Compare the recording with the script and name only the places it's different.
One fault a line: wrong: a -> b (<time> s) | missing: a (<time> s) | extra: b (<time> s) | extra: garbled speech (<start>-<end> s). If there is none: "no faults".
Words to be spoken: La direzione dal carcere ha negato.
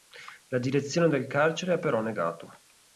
wrong: dal -> del (1.1 s)
extra: però (1.8 s)